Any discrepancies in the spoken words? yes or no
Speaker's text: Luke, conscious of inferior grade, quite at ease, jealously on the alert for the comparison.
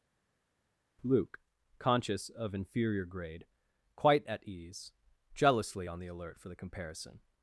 no